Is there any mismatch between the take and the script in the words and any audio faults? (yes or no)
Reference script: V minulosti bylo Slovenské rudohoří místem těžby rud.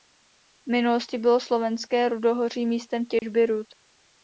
yes